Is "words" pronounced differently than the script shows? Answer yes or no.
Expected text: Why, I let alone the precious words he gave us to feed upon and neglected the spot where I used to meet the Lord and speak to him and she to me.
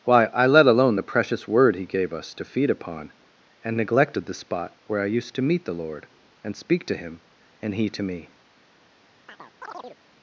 yes